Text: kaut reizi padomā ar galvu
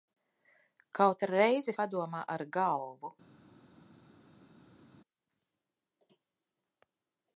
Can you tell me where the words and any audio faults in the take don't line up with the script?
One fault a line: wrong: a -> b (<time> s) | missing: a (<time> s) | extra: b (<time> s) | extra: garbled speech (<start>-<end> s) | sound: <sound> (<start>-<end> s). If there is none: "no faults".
no faults